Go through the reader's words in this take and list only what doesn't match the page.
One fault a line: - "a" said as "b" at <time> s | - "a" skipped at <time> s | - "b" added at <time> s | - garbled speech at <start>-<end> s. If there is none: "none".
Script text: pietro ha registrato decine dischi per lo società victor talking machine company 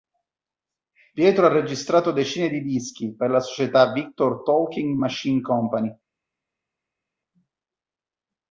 - "di" added at 2.5 s
- "lo" said as "la" at 3.3 s